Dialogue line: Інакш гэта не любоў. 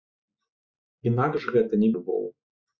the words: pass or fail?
pass